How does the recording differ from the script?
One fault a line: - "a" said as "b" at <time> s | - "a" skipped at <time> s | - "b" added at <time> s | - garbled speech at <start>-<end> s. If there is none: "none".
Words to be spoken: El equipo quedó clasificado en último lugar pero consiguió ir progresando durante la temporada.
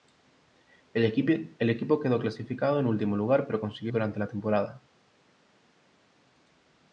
- "ir progresando" skipped at 3.9 s